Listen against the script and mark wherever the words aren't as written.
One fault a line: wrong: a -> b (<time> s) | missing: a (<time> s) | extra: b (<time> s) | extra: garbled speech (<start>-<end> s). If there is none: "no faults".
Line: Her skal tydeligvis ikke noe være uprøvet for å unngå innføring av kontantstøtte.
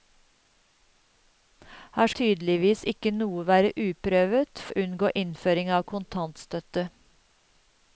missing: skal (2.1 s)
missing: for (4.6 s)